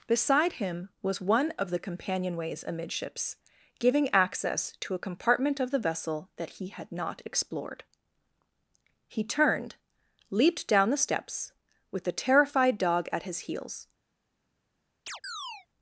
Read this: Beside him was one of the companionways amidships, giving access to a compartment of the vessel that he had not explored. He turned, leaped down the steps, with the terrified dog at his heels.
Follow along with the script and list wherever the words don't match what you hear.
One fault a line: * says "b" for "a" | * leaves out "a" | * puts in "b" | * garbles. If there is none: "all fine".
all fine